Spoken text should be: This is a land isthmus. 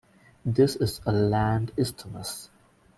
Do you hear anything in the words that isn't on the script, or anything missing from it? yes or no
no